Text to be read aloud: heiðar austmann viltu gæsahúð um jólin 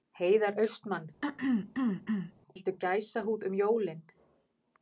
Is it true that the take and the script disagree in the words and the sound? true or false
true